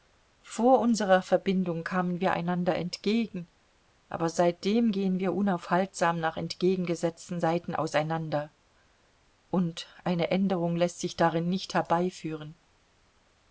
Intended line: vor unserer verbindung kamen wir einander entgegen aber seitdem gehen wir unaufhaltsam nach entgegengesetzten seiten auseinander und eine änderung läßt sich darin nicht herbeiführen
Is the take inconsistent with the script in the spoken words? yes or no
no